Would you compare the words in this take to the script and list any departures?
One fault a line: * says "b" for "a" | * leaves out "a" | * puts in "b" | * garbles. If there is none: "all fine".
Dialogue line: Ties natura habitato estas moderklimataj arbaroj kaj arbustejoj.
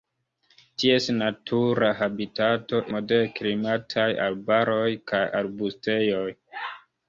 * leaves out "estas"